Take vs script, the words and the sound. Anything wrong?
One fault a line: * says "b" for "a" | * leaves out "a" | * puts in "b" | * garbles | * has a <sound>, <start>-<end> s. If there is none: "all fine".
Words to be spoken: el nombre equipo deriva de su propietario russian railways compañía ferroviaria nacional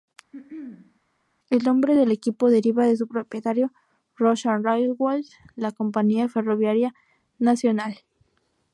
* has a throat clearing, 0.3-1.0 s
* puts in "del"
* puts in "la"